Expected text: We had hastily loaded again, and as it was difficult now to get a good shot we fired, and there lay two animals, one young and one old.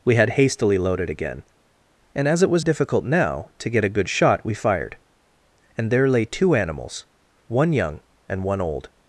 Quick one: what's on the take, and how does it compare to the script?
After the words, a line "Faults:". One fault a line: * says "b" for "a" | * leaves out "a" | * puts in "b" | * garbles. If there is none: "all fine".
We had hastily loaded again, and as it was difficult now to get a good shot we fired, and there lay two animals, one young and one old.
Faults:
all fine